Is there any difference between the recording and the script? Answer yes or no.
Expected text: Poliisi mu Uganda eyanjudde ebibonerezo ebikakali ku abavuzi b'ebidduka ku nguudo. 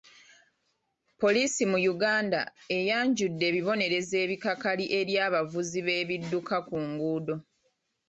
yes